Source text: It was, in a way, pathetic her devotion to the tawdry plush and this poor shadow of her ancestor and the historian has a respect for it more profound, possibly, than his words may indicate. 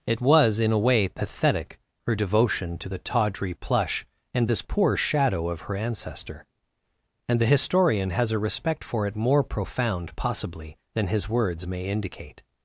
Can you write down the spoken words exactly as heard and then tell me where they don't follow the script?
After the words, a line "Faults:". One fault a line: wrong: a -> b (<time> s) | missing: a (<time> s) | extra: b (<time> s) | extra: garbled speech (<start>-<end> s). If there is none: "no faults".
It was, in a way, pathetic her devotion to the tawdry plush and this poor shadow of her ancestor and the historian has a respect for it more profound, possibly, than his words may indicate.
Faults:
no faults